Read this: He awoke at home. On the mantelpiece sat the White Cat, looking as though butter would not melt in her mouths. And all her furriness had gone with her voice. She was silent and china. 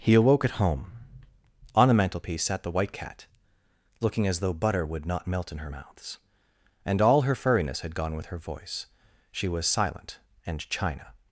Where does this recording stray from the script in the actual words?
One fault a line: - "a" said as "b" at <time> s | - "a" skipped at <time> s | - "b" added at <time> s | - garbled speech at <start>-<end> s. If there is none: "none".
none